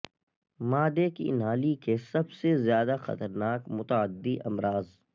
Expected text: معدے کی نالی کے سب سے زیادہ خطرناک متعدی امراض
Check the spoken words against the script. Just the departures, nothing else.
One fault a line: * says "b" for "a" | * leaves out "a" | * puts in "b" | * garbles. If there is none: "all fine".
all fine